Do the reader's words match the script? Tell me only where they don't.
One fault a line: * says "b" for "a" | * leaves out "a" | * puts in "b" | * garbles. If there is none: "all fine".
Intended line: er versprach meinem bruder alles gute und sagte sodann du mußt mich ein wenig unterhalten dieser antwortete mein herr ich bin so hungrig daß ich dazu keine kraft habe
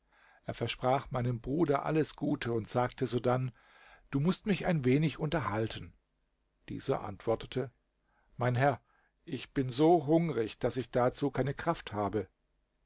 all fine